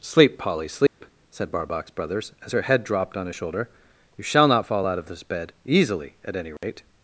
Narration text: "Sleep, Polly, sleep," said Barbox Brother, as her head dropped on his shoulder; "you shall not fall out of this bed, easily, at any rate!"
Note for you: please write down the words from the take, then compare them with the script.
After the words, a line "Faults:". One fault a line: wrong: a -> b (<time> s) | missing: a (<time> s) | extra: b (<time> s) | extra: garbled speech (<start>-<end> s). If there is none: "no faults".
"Sleep, Polly, sleep," said Barbox Brothers, as her head dropped on his shoulder; "you shall not fall out of this bed, easily, at any rate!"
Faults:
wrong: Brother -> Brothers (1.9 s)